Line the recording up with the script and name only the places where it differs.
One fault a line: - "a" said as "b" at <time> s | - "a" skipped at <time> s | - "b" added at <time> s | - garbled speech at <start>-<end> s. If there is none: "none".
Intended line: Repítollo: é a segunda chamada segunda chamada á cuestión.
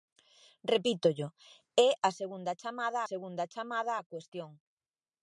none